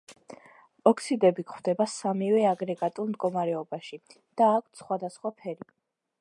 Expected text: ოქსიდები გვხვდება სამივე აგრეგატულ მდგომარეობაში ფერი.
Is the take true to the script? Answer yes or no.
no